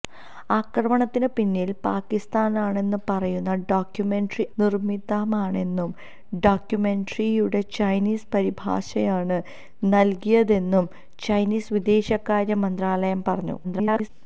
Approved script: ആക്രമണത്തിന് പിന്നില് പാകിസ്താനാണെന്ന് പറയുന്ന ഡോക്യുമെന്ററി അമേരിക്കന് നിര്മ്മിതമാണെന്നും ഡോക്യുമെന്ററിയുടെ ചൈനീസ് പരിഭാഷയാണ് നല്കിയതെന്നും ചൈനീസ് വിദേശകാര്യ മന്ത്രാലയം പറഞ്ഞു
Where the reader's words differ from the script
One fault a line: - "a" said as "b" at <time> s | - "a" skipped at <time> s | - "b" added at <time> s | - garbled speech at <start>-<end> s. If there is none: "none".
- "അമേരിക്കന്" skipped at 4.5 s
- garbled speech at 13.6-14.1 s